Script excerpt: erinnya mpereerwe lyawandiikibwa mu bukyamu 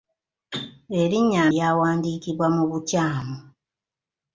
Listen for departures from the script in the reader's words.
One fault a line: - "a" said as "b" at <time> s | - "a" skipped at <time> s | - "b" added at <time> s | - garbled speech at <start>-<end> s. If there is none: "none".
- "mpereerwe" skipped at 1.4 s